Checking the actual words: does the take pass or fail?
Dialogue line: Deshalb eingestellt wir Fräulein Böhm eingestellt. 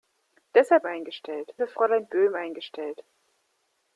pass